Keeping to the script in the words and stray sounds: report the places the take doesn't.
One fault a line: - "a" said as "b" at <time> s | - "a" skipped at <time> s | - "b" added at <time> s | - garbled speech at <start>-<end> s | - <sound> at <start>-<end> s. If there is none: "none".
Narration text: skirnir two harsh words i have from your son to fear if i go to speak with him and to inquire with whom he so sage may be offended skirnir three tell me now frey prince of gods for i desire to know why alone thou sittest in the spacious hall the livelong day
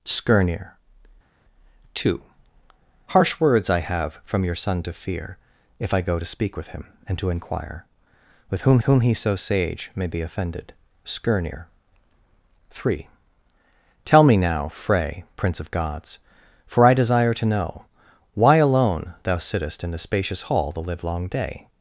- "whom" added at 8.8 s